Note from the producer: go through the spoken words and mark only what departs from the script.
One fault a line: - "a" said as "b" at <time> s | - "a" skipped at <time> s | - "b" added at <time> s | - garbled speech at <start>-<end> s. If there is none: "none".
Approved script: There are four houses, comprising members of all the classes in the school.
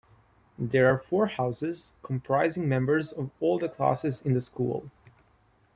none